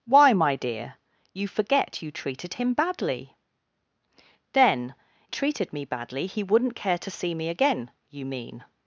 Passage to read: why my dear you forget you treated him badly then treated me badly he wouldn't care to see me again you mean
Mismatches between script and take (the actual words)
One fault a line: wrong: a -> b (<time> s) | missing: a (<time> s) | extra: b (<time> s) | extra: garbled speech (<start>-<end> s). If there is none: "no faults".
no faults